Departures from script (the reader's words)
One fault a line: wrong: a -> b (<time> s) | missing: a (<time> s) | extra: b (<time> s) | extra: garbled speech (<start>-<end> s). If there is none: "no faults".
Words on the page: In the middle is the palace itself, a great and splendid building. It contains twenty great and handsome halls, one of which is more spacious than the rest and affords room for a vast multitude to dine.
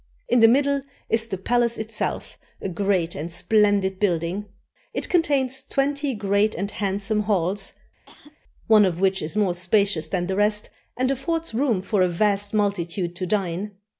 no faults